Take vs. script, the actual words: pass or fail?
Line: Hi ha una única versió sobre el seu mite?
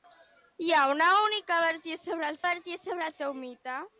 fail